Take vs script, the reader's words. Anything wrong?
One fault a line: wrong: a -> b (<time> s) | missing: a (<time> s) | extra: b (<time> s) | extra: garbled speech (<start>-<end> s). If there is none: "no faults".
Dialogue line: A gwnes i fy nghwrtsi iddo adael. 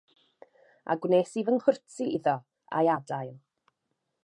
extra: a'i (2.8 s)